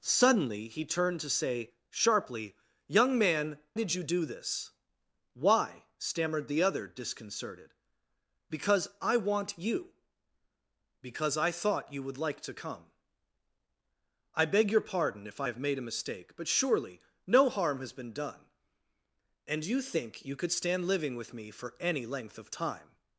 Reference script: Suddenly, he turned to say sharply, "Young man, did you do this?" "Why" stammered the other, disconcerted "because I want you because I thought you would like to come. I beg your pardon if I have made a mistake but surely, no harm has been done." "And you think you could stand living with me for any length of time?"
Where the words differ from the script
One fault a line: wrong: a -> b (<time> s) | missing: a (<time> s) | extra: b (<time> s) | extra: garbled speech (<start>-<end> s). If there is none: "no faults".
no faults